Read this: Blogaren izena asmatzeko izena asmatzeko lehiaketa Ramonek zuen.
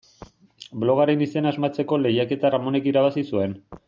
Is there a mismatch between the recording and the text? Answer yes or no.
yes